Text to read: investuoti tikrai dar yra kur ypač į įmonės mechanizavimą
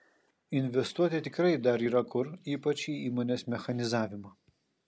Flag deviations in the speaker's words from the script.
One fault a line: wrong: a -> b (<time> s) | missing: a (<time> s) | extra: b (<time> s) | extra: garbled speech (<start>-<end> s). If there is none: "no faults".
no faults